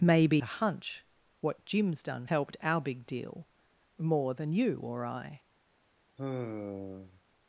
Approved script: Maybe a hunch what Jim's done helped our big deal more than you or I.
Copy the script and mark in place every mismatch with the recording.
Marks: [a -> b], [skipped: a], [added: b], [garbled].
Maybe a hunch what Jim's done helped our big deal more than you or I.